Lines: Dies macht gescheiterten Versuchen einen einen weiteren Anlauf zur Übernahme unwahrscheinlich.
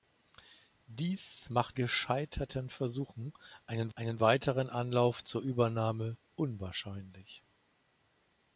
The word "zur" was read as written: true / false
true